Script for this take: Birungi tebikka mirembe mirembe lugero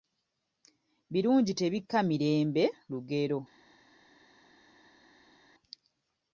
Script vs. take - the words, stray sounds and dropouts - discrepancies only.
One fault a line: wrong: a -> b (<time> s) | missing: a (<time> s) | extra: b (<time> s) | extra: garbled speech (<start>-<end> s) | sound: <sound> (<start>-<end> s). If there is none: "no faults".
missing: mirembe (2.6 s)